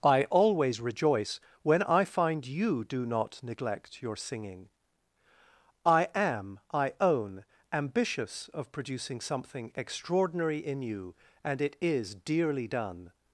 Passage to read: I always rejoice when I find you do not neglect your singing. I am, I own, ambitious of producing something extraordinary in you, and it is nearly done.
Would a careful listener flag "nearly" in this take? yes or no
yes